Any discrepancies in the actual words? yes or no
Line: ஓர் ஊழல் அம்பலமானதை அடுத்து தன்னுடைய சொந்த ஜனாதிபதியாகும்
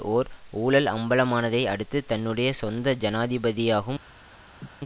no